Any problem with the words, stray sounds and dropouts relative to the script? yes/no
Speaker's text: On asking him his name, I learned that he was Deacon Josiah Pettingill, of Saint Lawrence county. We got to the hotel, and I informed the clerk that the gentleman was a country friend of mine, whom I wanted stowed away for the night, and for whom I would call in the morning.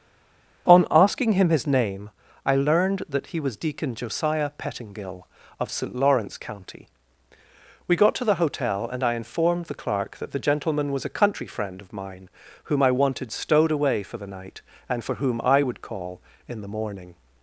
no